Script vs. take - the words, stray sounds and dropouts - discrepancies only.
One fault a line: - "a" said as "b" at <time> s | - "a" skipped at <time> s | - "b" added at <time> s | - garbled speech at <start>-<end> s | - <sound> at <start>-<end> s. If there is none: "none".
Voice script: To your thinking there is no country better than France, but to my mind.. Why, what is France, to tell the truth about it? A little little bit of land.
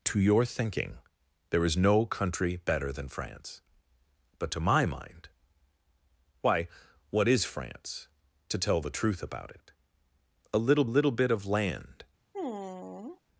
- sigh at 12.3-13.2 s